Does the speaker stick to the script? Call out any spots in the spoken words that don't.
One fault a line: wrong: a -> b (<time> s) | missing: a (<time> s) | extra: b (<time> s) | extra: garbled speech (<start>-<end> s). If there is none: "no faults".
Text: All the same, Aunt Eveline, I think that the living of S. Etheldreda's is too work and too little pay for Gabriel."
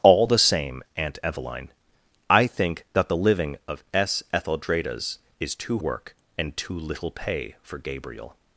no faults